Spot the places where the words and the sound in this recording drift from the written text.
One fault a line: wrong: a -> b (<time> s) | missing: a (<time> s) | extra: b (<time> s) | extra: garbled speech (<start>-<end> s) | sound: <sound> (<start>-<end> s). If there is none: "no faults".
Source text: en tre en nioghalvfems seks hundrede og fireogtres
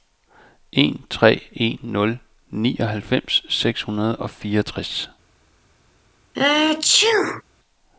extra: nul (1.8 s)
sound: sneeze (6.3-7.4 s)